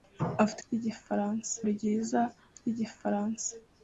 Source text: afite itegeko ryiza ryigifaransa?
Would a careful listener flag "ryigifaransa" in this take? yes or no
no